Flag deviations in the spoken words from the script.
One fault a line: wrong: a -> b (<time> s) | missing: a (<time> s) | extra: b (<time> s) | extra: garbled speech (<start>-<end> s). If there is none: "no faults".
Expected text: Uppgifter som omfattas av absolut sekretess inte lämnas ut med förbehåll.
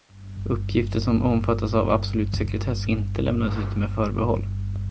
no faults